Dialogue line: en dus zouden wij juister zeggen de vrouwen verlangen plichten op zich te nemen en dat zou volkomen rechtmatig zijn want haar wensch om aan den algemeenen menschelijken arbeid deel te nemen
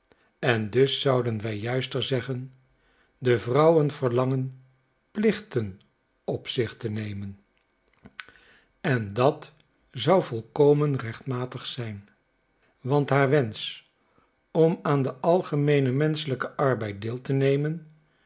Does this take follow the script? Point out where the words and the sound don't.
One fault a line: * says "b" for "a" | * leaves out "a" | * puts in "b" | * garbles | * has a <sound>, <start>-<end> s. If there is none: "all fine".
all fine